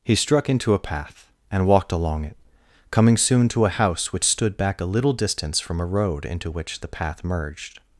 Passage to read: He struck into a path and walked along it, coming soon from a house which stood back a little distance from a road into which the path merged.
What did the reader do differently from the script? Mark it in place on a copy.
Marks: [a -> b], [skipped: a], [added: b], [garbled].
He struck into a path and walked along it, coming soon [from -> to] a house which stood back a little distance from a road into which the path merged.